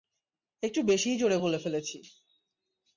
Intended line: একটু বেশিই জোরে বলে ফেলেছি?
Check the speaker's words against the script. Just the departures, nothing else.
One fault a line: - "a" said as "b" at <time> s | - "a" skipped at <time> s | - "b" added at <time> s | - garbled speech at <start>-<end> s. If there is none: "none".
none